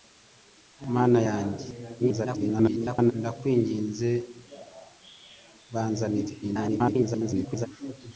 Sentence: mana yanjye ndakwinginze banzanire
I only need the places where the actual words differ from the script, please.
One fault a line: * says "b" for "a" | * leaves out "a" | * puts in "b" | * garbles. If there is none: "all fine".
* garbles
* garbles